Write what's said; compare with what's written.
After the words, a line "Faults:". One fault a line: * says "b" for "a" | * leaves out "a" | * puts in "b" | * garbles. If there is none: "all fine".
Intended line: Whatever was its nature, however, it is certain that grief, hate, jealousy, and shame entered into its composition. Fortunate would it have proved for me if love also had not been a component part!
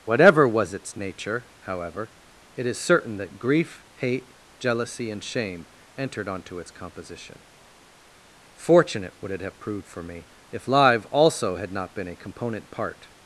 Whatever was its nature, however, it is certain that grief, hate, jealousy, and shame entered onto its composition. Fortunate would it have proved for me if live also had not been a component part!
Faults:
* says "onto" for "into"
* says "live" for "love"